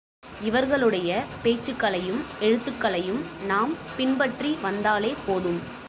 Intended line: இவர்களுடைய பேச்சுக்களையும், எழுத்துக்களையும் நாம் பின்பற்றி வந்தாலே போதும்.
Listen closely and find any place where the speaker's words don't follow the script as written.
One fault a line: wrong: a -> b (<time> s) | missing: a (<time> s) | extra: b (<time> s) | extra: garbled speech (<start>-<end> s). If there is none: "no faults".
no faults